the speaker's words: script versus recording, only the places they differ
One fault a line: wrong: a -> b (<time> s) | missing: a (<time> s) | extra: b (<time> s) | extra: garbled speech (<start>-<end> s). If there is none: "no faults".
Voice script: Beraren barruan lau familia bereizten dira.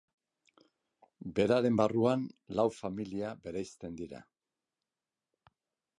no faults